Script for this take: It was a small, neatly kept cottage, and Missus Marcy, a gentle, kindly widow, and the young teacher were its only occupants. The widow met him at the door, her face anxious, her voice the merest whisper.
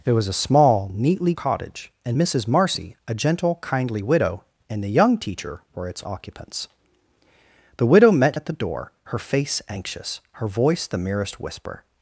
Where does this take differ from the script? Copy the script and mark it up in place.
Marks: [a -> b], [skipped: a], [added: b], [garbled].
It was a small, neatly [skipped: kept] cottage, and Missus Marcy, a gentle, kindly widow, and the young teacher were its [skipped: only] occupants. The widow met [skipped: him] at the door, her face anxious, her voice the merest whisper.